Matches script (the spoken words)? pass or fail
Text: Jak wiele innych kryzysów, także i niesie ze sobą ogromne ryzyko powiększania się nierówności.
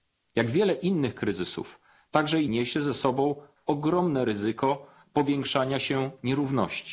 pass